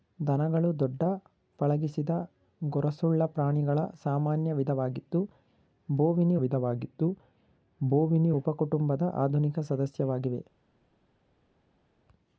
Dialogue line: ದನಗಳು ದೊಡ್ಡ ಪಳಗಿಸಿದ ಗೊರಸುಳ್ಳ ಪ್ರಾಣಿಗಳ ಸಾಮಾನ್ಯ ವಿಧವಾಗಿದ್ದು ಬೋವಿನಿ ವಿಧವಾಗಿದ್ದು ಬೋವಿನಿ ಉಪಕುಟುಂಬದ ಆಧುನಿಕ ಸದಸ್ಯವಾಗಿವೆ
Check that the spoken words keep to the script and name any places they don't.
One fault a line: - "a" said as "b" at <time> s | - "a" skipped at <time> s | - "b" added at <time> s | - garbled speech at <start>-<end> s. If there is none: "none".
none